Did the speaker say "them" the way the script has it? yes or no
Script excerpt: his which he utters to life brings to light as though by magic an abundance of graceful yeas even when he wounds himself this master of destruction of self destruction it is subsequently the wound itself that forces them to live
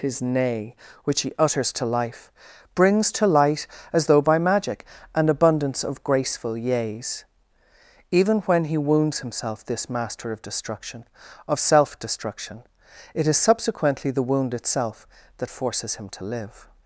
no